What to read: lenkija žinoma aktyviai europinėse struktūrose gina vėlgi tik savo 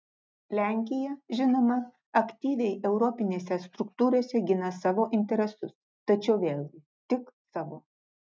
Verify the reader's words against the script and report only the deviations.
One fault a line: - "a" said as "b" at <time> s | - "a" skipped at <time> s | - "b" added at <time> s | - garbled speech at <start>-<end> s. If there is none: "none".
- "savo interesus tačiau" added at 4.8 s